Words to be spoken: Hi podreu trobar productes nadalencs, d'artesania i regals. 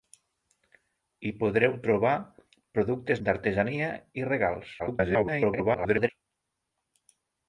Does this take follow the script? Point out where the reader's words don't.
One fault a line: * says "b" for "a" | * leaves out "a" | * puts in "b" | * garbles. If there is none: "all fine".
* leaves out "nadalencs"
* garbles